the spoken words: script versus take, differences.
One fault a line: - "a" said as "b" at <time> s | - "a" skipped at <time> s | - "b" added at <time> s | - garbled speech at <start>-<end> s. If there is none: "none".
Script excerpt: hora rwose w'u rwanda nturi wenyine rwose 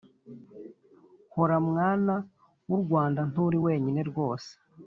- "rwose" said as "mwana" at 1.7 s